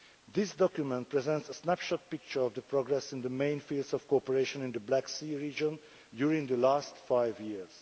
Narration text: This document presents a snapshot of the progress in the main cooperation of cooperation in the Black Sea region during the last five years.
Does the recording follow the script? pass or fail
fail